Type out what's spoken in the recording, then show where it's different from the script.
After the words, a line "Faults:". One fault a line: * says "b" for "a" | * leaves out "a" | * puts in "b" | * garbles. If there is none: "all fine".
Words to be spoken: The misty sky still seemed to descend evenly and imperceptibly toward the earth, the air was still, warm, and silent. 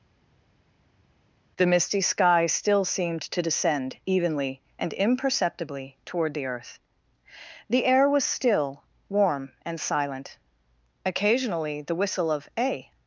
The misty sky still seemed to descend evenly and imperceptibly toward the earth, the air was still, warm, and silent. Occasionally the whistle of a
Faults:
* puts in "Occasionally the whistle of a"